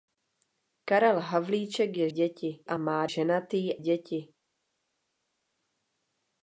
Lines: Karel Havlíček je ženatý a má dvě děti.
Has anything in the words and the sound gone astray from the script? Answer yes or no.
yes